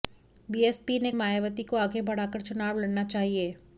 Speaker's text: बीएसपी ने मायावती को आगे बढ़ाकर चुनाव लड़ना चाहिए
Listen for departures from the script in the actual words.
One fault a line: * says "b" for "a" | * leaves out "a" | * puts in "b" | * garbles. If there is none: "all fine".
all fine